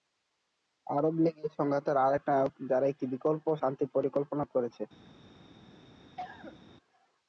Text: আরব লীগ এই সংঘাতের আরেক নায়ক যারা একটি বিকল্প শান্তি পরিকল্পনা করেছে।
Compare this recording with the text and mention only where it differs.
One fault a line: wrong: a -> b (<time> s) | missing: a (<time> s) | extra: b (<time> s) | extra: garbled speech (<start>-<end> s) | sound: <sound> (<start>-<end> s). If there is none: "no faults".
sound: cough (6.2-6.7 s)